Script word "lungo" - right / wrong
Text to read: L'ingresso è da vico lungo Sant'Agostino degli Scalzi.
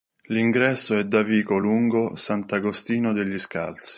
right